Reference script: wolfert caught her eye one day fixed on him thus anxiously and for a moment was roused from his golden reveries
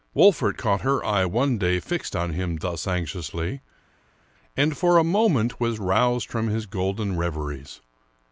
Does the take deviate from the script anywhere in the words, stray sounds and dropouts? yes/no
no